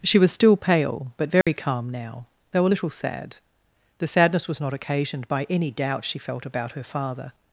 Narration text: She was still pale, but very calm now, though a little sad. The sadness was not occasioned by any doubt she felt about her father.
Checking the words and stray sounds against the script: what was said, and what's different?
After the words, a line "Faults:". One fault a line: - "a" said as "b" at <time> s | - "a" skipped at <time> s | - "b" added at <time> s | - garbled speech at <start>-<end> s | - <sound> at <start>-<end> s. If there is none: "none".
She was still pale, but very calm now, though a little sad. The sadness was not occasioned by any doubt she felt about her father.
Faults:
- dropout at 1.4-1.5 s